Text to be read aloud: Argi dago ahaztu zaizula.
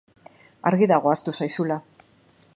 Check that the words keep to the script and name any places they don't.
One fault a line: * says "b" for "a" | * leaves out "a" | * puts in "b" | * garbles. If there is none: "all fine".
all fine